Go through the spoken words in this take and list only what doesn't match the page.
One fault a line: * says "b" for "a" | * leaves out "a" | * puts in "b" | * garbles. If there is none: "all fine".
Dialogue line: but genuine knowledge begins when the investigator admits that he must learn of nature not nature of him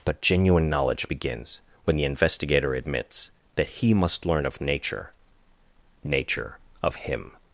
* leaves out "not"